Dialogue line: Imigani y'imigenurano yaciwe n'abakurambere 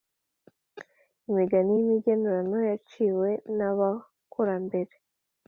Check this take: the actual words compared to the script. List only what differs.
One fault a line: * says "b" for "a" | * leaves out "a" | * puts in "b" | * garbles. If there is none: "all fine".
all fine